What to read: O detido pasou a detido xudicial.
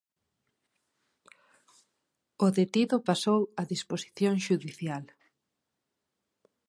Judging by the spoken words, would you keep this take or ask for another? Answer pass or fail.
fail